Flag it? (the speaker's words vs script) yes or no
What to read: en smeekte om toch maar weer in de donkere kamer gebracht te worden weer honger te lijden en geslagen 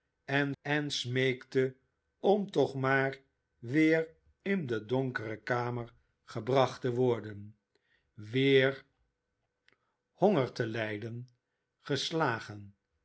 yes